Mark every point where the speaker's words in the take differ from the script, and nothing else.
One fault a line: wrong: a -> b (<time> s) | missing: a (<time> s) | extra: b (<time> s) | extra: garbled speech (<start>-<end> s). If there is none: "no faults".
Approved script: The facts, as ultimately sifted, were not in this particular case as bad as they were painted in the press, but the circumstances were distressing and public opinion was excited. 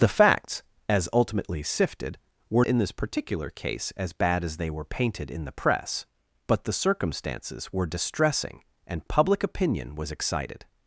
missing: not (2.6 s)